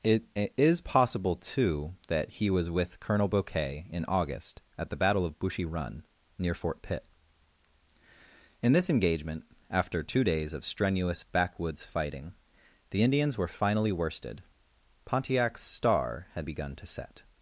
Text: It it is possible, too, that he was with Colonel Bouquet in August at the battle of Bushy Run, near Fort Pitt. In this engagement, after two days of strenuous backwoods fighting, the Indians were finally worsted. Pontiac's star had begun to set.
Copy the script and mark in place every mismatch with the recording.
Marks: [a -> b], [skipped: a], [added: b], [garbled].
It it is possible, too, that he was with Colonel Bouquet in August at the battle of Bushy Run, near Fort Pitt. In this engagement, after two days of strenuous backwoods fighting, the Indians were finally worsted. Pontiac's star had begun to set.